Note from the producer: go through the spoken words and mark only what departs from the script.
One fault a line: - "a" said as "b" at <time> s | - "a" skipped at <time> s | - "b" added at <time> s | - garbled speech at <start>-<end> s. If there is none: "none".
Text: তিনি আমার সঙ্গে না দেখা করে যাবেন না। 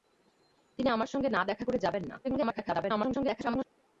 - garbled speech at 2.2-3.6 s